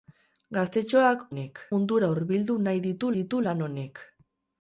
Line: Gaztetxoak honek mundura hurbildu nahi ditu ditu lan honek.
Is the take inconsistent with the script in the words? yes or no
no